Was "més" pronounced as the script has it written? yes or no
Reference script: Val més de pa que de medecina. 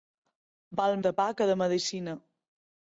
no